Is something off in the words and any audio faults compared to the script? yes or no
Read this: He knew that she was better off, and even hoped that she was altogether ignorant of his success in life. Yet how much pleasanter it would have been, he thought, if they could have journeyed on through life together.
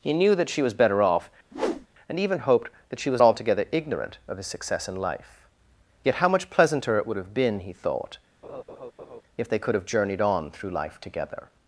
yes